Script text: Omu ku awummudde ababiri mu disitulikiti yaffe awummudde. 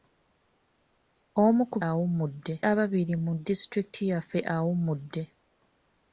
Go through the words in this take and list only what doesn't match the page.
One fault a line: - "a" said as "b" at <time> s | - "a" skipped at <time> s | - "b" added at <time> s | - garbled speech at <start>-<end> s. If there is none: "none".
none